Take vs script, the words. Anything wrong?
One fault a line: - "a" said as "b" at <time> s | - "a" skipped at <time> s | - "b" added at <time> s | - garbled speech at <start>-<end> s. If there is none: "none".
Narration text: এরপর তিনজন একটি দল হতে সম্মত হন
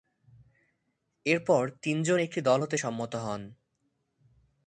none